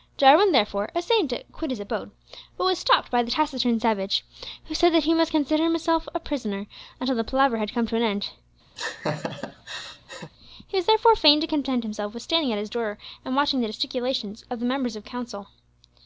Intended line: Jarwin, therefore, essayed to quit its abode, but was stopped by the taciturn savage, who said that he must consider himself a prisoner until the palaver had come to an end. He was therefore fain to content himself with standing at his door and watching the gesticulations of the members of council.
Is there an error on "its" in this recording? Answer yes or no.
yes